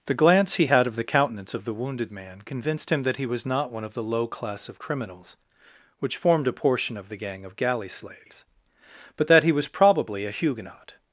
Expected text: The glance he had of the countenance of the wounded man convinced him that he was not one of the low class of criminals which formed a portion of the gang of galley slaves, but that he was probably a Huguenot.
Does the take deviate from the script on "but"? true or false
false